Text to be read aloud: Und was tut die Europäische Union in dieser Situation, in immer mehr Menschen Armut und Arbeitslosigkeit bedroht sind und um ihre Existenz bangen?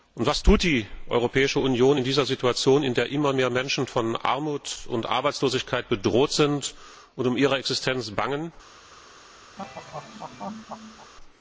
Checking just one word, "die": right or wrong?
right